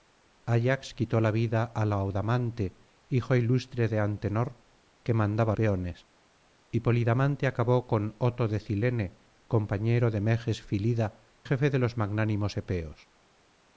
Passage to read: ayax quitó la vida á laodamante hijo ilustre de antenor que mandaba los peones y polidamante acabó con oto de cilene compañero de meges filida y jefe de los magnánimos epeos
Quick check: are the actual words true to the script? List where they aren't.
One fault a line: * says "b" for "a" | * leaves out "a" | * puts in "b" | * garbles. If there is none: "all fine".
* leaves out "los"
* leaves out "y"